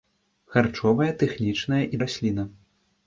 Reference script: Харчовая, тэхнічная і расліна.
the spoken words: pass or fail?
pass